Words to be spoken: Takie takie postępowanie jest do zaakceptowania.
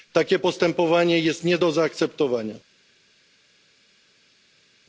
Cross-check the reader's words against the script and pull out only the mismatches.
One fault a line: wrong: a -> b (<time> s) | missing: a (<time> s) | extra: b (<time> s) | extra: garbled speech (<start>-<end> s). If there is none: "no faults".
missing: takie (0.4 s)
extra: nie (1.4 s)